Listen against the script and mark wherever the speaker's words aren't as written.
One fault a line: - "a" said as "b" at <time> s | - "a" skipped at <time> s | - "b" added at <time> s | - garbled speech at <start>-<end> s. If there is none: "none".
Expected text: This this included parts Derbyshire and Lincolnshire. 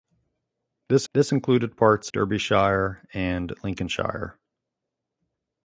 none